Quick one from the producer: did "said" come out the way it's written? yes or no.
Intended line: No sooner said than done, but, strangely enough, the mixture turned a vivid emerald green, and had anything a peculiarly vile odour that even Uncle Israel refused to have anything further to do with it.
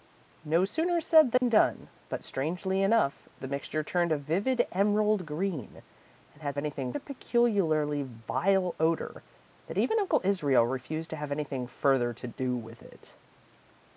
yes